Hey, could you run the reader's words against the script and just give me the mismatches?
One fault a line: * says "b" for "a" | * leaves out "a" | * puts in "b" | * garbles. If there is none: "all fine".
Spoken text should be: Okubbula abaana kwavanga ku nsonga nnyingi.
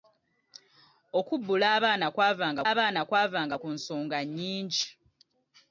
* puts in "abaana kwavanga"